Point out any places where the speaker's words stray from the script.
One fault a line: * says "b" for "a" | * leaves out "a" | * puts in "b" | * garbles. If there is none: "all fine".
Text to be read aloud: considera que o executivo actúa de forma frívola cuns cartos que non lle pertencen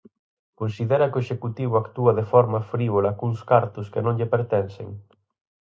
all fine